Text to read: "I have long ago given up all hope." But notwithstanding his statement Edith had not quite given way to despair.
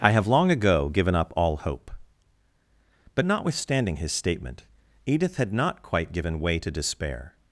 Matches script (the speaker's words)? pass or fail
pass